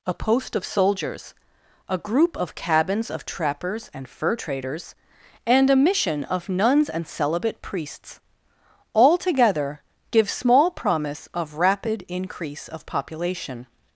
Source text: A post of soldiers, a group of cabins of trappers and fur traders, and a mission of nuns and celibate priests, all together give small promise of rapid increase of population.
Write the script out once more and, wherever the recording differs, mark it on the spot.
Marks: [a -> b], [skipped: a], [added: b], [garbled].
A post of soldiers, a group of cabins of trappers and fur traders, and a mission of nuns and celibate priests, all together give small promise of rapid increase of population.